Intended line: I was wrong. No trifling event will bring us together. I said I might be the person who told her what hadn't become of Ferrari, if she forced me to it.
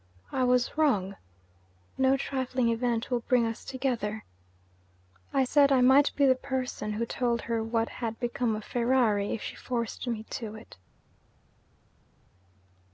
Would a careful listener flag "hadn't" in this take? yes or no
yes